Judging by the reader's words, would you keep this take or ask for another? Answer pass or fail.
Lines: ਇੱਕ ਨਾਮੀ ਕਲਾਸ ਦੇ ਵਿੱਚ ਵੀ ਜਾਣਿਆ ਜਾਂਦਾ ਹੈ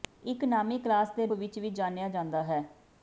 pass